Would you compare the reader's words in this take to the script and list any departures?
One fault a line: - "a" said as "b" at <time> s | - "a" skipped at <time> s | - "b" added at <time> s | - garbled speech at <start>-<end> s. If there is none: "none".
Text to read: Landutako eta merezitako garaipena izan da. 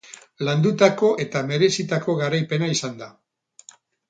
none